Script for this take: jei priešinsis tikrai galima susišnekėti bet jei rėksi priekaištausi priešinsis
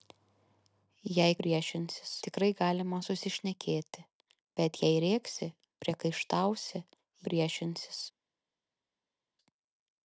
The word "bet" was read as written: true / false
true